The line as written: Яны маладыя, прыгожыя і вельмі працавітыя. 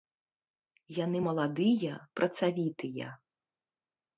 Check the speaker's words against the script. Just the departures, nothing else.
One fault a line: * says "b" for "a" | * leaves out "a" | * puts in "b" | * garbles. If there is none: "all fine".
* leaves out "прыгожыя і вельмі"